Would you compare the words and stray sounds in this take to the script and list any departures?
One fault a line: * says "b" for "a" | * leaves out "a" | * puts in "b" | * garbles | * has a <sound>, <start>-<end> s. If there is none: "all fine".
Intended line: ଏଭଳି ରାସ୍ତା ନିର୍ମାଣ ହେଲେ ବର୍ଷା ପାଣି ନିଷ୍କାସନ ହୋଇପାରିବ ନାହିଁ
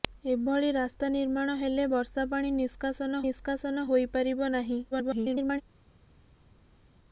* puts in "ନିଷ୍କାସନ"
* garbles